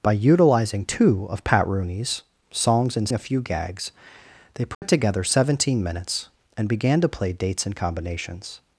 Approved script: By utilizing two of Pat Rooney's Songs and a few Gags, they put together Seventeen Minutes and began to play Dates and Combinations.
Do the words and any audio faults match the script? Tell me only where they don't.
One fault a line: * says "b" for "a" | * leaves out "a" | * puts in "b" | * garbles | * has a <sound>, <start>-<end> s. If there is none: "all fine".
* has a dropout, 4.7-4.8 s